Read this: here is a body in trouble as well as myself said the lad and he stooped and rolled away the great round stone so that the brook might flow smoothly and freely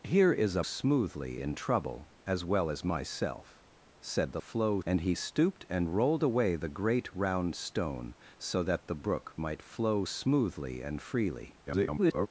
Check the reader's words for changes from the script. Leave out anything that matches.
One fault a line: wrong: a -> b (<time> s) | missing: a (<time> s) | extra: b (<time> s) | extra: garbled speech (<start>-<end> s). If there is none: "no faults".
wrong: body -> smoothly (0.6 s)
wrong: lad -> flow (4.4 s)
extra: garbled speech (11.7-12.3 s)